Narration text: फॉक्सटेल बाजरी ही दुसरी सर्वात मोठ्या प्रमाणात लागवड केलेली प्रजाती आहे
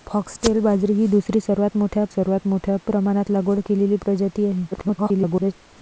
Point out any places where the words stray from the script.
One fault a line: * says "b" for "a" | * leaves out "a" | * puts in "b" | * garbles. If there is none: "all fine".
* puts in "सर्वात मोठ्या"
* garbles